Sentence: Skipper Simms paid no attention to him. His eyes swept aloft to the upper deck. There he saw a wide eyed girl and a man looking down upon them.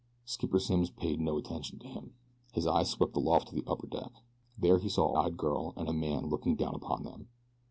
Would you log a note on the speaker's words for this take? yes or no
yes